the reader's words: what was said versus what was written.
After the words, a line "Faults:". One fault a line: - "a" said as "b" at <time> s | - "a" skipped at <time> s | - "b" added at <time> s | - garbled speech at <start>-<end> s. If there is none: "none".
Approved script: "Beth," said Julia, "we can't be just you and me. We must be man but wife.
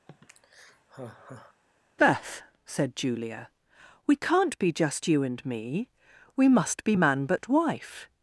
"Beth," said Julia, "we can't be just you and me. We must be man but wife.
Faults:
none